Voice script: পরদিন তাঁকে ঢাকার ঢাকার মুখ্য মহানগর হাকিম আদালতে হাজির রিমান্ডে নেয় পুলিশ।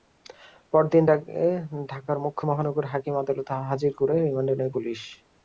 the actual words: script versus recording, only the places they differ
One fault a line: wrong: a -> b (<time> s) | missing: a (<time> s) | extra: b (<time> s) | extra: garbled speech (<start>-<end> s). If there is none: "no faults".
missing: ঢাকার (2.2 s)
extra: করে (4.0 s)